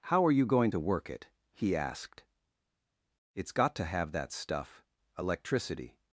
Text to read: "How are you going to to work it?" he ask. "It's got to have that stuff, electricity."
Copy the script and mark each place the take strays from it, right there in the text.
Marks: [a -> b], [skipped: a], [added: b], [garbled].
"How are you going to [skipped: to] work it?" he [ask. -> asked] "It's got to have that stuff, electricity."